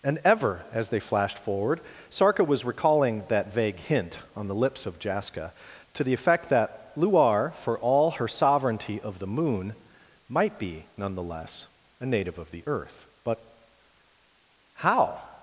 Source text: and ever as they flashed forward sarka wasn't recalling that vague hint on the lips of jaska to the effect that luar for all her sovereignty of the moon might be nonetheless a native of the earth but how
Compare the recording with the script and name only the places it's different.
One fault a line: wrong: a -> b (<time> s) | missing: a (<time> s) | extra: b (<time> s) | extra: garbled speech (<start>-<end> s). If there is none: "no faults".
wrong: wasn't -> was (2.4 s)